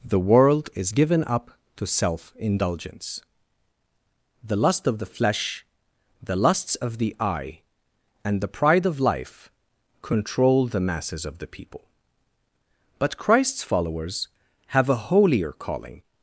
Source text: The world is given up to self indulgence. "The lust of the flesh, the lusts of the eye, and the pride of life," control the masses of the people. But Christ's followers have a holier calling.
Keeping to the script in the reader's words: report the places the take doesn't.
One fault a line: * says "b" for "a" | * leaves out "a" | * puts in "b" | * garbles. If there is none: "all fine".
all fine